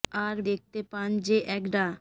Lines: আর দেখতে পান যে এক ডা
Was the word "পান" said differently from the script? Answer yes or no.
no